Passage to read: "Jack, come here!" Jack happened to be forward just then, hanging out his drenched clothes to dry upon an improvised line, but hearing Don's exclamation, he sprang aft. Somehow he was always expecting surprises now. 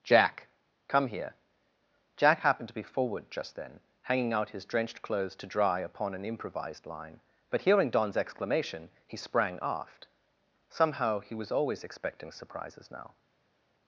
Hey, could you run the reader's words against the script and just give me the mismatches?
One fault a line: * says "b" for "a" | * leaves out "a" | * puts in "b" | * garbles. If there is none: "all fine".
all fine